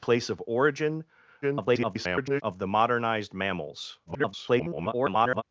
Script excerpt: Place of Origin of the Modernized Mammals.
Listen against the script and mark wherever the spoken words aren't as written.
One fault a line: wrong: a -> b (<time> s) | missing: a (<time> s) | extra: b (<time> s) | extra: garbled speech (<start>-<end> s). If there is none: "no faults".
extra: garbled speech (1.4-2.4 s)
extra: garbled speech (4.1-5.4 s)